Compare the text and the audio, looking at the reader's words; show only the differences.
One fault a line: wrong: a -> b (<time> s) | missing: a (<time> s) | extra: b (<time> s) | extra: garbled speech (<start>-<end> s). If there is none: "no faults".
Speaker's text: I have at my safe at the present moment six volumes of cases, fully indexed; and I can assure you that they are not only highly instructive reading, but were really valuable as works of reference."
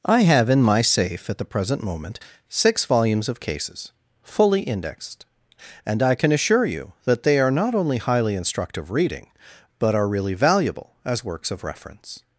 wrong: at -> in (0.5 s)
wrong: were -> are (9.9 s)